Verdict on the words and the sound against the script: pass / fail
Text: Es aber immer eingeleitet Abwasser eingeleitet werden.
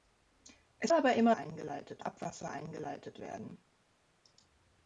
pass